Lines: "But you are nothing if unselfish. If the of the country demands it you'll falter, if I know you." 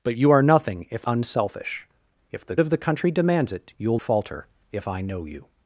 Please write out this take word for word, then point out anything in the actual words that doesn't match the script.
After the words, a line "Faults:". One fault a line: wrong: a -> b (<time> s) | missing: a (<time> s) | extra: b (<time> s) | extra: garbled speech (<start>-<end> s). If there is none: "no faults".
"But you are nothing if unselfish. If the of the country demands it you'll falter, if I know you."
Faults:
no faults